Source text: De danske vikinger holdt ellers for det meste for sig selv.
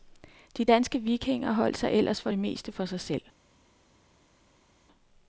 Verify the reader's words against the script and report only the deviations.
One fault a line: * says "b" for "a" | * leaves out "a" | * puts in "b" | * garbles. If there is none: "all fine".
* puts in "sig"